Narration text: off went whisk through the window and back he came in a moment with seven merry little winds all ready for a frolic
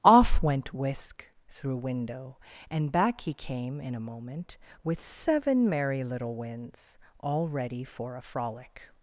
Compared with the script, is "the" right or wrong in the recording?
wrong